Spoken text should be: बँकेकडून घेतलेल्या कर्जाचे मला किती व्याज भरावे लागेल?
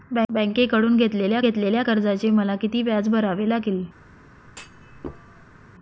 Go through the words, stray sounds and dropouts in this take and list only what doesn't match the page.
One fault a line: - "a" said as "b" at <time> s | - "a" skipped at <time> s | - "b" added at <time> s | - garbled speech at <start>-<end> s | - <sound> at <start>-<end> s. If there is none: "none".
- "घेतलेल्या" added at 1.4 s
- thud at 4.5-5.7 s